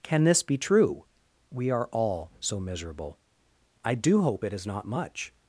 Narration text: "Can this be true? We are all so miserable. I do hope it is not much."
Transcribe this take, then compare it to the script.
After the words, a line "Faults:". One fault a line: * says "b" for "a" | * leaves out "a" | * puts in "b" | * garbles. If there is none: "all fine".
"Can this be true? We are all so miserable. I do hope it is not much."
Faults:
all fine